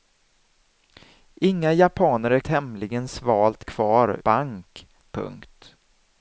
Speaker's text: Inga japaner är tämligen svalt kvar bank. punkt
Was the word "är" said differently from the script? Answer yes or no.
no